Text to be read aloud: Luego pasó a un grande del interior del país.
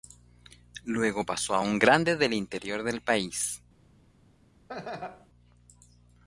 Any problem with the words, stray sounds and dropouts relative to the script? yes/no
yes